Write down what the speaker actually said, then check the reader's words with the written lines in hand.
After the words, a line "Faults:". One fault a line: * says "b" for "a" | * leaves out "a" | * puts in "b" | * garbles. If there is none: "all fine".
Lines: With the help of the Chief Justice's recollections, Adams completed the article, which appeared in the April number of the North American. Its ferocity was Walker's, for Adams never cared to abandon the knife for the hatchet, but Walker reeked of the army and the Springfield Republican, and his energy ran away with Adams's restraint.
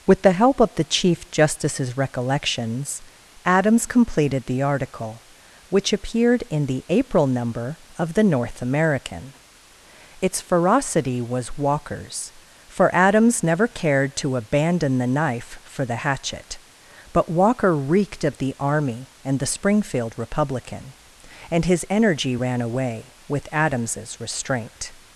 With the help of the Chief Justice's recollections, Adams completed the article, which appeared in the April number of the North American. Its ferocity was Walker's, for Adams never cared to abandon the knife for the hatchet, but Walker reeked of the army and the Springfield Republican, and his energy ran away with Adams's restraint.
Faults:
all fine